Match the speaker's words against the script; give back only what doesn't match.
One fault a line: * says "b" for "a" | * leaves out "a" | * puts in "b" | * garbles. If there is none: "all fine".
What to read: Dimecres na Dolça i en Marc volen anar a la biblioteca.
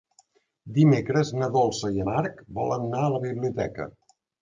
* leaves out "en"